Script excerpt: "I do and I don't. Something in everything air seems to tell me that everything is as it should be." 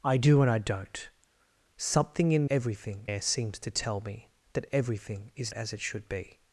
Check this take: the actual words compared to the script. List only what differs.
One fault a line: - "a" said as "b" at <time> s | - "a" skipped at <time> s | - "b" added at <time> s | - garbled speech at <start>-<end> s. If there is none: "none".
none